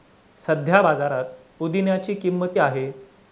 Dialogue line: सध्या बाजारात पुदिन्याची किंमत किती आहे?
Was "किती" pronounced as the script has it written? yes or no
no